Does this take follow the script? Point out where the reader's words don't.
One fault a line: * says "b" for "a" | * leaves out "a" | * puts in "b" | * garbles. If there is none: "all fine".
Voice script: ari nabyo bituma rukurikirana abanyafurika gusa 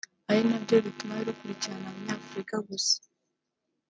all fine